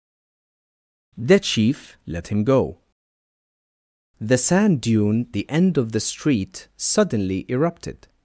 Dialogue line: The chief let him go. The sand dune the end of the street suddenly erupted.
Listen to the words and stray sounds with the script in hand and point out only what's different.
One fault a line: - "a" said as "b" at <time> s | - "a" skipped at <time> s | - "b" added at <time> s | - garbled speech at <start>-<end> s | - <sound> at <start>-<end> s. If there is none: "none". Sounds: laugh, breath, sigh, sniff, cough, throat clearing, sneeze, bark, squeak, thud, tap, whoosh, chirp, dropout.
none